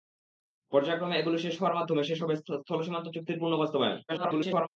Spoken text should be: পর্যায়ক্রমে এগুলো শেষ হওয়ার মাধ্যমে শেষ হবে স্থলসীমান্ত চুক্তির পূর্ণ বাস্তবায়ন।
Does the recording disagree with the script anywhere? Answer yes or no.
yes